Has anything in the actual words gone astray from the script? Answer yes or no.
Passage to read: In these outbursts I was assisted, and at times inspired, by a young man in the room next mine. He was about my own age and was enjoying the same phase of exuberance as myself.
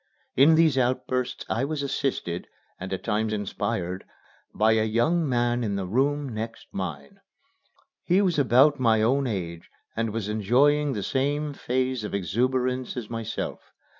no